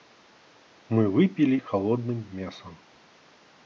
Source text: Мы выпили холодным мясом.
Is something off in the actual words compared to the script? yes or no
no